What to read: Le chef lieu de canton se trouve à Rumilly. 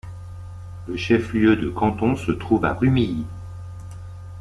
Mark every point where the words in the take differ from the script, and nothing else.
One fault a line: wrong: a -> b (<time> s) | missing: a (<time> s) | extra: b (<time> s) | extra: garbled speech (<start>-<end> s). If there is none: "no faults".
no faults